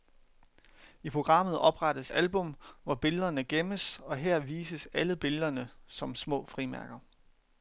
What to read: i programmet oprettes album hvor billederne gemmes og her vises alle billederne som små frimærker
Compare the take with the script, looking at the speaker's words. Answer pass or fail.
pass